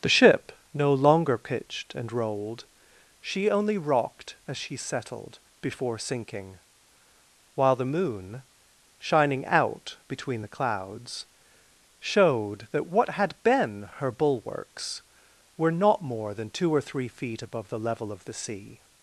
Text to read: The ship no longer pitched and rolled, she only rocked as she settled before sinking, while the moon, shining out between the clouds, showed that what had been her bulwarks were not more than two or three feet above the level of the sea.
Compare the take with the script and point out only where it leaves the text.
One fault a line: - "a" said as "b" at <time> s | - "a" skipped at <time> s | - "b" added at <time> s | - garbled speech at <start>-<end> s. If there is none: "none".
none